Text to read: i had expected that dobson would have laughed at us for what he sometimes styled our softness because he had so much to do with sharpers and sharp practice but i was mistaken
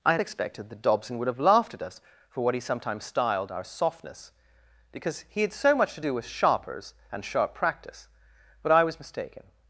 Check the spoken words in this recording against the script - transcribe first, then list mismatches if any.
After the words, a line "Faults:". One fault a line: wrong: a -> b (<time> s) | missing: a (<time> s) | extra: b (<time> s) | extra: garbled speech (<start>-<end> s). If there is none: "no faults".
i had expected that dobson would have laughed at us for what he sometimes styled our softness because he had so much to do with sharpers and sharp practice but i was mistaken
Faults:
no faults